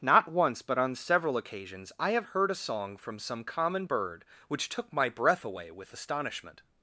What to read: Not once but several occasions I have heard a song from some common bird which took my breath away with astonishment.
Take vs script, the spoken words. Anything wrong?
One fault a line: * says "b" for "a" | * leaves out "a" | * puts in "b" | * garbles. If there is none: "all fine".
* puts in "on"